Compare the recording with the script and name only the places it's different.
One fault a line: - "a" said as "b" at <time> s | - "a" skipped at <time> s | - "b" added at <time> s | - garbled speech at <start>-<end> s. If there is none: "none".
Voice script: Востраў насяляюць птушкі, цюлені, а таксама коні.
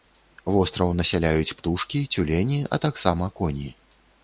none